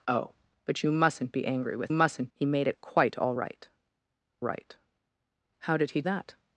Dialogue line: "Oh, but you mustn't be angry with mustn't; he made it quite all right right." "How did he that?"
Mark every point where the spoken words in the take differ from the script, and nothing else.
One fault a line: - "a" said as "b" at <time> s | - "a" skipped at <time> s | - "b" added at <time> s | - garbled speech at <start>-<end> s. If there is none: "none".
none